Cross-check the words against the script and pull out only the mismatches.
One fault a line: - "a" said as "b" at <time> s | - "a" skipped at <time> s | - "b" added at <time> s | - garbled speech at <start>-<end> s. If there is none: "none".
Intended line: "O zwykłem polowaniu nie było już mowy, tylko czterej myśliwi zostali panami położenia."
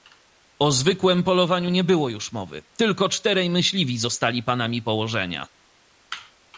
none